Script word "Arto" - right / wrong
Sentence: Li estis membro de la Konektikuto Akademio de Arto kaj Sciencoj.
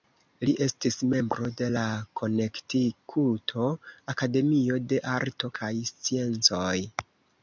right